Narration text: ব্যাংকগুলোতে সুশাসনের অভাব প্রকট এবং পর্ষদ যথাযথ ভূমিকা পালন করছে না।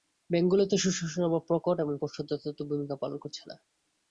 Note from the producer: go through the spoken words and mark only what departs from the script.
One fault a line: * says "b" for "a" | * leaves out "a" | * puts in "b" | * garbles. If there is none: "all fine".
all fine